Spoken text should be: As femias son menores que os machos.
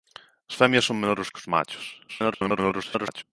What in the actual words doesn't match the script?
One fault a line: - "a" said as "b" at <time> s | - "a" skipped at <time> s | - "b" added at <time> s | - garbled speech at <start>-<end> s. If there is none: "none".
- garbled speech at 2.1-3.2 s